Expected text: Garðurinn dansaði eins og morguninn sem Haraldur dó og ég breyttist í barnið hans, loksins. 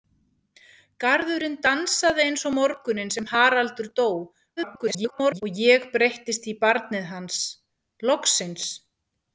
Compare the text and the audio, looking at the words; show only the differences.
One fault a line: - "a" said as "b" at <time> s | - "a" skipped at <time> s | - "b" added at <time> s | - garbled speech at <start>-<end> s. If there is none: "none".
- garbled speech at 4.6-5.4 s